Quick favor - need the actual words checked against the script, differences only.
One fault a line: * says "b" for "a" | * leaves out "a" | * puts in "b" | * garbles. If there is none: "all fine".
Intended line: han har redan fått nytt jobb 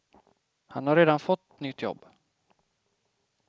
all fine